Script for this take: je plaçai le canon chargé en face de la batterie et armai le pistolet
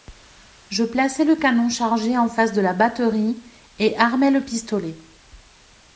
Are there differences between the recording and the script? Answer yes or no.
no